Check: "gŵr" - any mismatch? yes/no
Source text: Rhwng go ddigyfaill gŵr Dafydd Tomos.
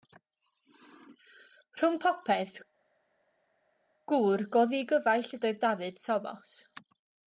yes